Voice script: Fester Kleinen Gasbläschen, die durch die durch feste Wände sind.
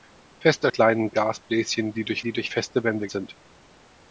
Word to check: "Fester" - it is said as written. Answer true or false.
true